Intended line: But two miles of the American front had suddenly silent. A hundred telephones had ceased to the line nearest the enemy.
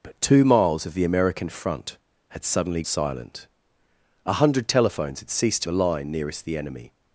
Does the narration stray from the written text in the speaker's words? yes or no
no